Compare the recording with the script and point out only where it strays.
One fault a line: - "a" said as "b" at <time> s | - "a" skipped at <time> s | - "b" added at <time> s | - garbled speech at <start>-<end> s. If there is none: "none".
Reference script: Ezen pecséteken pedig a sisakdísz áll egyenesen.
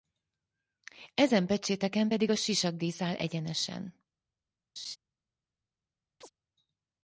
none